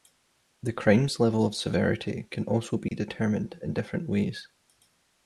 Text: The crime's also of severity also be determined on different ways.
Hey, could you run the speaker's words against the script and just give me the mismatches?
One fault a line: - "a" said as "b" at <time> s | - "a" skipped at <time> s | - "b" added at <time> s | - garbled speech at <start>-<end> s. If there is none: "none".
- "also" said as "level" at 1.2 s
- "can" added at 2.3 s
- "on" said as "in" at 3.6 s